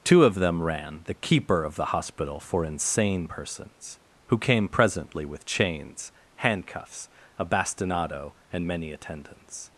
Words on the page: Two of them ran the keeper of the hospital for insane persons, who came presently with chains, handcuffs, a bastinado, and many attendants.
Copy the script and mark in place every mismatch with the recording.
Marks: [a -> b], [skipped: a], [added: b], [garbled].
Two of them ran the keeper of the hospital for insane persons, who came presently with chains, handcuffs, a bastinado, and many attendants.